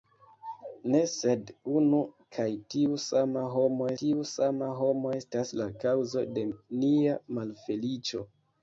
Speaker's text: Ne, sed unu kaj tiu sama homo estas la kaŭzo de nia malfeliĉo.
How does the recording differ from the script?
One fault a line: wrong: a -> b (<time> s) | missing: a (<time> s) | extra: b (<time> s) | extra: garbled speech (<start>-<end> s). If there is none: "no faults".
extra: tiu sama homo (4.0 s)